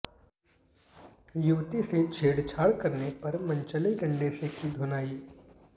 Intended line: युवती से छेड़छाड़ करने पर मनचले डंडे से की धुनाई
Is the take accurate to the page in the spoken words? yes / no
yes